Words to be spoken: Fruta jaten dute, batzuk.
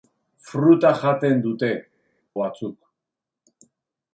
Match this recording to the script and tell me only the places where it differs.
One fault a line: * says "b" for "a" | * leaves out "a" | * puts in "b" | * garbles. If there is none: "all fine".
all fine